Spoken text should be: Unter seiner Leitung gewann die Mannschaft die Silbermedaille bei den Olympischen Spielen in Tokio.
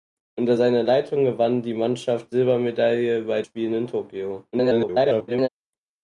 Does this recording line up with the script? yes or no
no